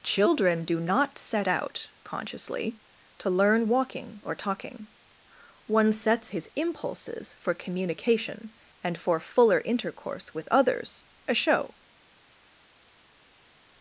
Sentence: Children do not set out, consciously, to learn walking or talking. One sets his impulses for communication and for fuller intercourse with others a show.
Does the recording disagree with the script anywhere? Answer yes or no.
no